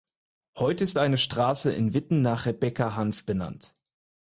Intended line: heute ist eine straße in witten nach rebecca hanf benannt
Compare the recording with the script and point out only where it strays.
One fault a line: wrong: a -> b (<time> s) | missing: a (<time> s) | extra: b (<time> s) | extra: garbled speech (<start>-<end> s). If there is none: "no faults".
no faults